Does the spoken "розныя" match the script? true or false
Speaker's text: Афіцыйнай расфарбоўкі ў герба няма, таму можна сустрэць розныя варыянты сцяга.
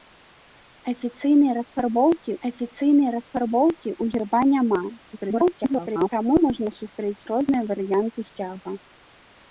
true